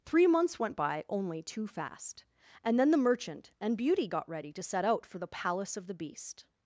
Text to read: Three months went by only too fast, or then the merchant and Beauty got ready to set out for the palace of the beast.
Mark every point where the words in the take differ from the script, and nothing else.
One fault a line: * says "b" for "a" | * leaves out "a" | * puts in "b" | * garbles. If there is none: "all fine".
* says "and" for "or"